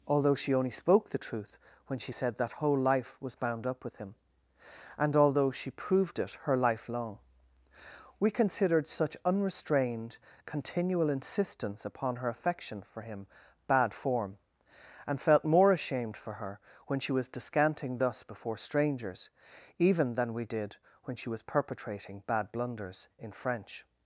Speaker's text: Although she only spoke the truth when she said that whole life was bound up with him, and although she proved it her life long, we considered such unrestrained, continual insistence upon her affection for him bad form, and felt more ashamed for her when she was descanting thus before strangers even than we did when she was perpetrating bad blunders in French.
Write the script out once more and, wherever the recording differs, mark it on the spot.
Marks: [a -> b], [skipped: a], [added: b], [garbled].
Although she only spoke the truth when she said that whole life was bound up with him, and although she proved it her life long, we considered such unrestrained, continual insistence upon her affection for him bad form, and felt more ashamed for her when she was descanting thus before strangers even than we did when she was perpetrating bad blunders in French.